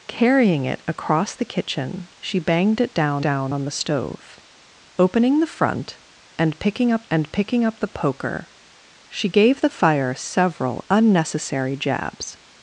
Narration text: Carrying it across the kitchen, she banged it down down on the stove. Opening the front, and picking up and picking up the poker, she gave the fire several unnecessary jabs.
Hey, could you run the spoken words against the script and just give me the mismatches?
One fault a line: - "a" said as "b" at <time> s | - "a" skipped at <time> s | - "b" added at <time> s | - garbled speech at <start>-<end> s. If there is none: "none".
none